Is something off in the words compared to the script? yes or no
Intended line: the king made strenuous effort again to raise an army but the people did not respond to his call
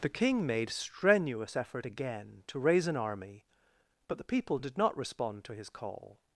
no